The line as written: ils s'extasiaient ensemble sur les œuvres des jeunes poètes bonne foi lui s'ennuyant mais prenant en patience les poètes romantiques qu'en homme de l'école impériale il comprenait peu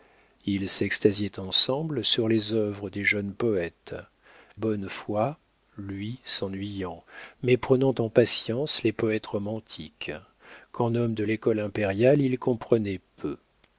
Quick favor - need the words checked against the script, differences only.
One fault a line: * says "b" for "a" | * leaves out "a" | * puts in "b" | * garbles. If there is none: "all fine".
all fine